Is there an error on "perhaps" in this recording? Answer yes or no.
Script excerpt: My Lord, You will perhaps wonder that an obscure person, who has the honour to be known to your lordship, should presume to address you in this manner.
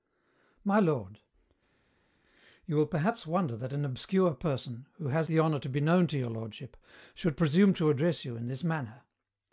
no